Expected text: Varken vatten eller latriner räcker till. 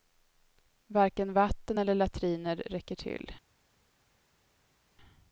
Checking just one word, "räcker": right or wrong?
right